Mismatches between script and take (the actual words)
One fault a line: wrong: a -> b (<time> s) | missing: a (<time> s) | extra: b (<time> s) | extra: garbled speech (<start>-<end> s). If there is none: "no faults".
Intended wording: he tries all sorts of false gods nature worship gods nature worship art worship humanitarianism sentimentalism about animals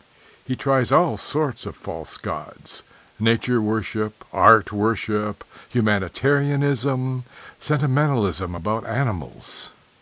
missing: gods nature worship (4.2 s)